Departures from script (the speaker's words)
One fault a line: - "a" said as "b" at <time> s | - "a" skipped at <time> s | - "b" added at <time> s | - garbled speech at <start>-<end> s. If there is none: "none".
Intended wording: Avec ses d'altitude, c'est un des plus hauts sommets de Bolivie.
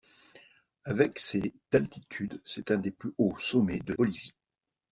none